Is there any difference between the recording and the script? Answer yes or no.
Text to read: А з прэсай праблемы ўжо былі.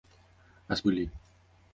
yes